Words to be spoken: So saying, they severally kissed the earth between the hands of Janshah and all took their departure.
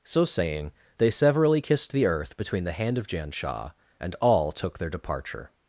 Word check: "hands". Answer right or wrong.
wrong